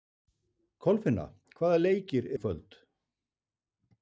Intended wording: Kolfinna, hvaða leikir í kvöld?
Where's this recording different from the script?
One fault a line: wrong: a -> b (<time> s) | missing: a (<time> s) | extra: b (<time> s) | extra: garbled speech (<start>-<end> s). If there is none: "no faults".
no faults